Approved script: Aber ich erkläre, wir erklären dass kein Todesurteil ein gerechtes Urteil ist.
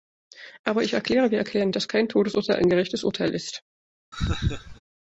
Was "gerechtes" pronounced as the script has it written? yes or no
yes